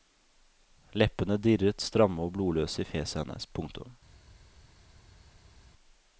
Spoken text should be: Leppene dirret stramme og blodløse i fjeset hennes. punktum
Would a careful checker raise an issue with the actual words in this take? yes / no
no